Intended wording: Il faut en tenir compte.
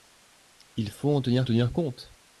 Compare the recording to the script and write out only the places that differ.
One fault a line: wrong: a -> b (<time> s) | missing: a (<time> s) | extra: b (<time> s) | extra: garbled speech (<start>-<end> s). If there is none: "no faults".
extra: tenir (1.4 s)